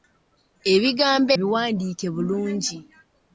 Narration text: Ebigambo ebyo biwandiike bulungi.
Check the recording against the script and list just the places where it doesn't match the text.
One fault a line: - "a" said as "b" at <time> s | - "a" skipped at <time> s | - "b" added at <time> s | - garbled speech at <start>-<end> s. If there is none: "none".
- "ebyo" skipped at 1.3 s